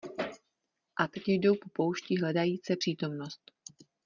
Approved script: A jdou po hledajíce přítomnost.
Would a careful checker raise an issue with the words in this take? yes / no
yes